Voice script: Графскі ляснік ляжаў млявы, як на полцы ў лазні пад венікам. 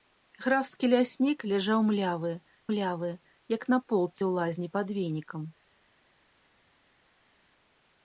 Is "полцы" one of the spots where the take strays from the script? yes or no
no